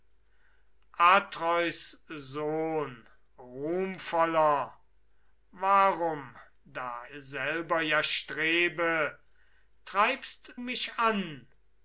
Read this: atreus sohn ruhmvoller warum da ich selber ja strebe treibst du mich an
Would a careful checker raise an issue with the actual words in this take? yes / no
yes